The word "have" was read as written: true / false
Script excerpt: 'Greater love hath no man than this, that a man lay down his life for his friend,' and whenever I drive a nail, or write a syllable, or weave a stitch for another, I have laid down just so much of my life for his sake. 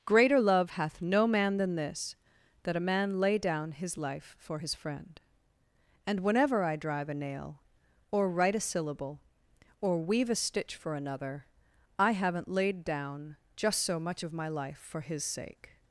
false